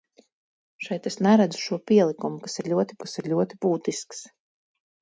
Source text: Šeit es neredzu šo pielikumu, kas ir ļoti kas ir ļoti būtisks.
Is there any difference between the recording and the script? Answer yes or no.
no